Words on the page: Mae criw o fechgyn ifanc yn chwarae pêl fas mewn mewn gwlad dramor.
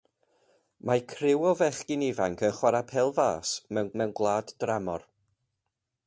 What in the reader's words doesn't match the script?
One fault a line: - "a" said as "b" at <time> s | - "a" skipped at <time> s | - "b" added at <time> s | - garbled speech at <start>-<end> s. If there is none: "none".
none